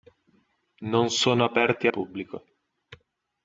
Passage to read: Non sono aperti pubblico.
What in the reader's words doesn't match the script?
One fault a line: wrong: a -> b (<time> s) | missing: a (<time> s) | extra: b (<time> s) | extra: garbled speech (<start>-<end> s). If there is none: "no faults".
no faults